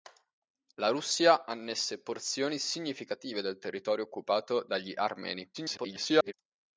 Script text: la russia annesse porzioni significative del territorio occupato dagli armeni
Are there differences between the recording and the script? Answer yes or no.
yes